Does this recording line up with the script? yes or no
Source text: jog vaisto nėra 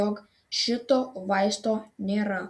no